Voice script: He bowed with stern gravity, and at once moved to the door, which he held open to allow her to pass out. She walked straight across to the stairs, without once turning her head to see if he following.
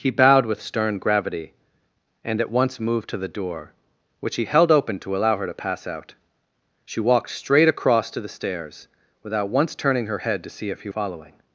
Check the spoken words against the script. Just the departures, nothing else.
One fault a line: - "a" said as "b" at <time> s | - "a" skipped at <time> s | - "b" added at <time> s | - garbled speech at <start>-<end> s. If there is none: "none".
none